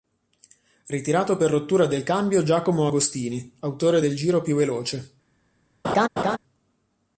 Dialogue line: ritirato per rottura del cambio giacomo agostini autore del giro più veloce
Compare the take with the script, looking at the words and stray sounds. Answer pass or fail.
fail